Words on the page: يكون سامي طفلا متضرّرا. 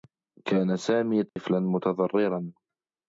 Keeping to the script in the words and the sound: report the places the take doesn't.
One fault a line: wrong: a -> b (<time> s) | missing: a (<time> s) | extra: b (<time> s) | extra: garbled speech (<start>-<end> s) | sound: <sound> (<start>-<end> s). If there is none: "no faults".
wrong: يكون -> كان (0.5 s)
sound: dropout (1.3-1.4 s)